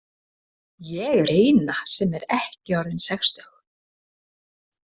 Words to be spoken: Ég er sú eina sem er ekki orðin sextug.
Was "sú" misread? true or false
true